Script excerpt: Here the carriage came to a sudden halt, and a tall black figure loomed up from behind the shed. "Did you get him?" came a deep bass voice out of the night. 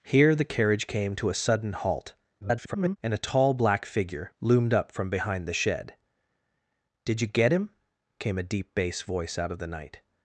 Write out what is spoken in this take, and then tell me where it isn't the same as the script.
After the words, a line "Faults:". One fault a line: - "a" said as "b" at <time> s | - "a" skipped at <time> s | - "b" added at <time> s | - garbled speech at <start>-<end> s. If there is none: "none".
Here the carriage came to a sudden halt, [garbled] and a tall black figure loomed up from behind the shed. "Did you get him?" came a deep bass voice out of the night.
Faults:
- garbled speech at 2.4-3.0 s